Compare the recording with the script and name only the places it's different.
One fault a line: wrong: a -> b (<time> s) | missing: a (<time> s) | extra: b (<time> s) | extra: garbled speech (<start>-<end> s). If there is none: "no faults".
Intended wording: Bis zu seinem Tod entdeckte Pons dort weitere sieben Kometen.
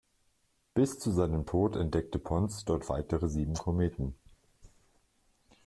no faults